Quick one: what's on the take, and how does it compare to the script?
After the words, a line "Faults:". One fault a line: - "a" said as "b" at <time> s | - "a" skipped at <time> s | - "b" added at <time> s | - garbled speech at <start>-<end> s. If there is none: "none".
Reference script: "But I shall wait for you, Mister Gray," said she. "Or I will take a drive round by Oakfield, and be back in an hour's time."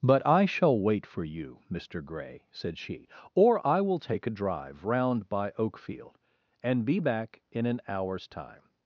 "But I shall wait for you, Mister Gray," said she. "Or I will take a drive round by Oakfield, and be back in an hour's time."
Faults:
none